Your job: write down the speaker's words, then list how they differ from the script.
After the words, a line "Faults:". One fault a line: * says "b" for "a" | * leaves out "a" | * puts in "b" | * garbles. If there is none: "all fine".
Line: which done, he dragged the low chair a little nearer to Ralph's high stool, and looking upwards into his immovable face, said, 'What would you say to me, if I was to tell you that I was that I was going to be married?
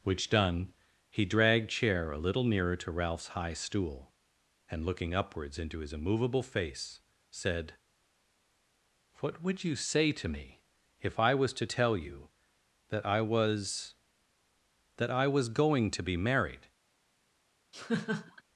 which done, he dragged chair a little nearer to Ralph's high stool, and looking upwards into his immovable face, said, 'What would you say to me, if I was to tell you that I was that I was going to be married?
Faults:
* leaves out "the low"